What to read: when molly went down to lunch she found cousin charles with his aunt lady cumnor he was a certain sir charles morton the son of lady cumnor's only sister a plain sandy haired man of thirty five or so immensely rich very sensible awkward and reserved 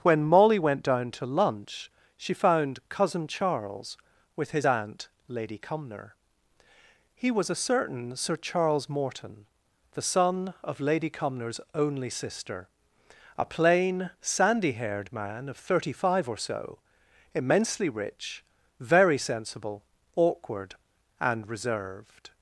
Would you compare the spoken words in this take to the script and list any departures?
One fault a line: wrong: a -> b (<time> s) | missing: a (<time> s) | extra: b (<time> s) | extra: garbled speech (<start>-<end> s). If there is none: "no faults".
no faults